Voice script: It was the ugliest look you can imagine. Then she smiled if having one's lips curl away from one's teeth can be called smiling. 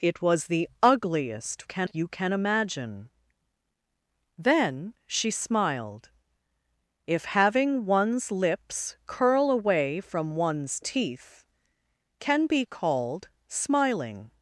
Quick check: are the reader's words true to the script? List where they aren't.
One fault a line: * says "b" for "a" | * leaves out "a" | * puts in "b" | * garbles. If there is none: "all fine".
* says "can" for "look"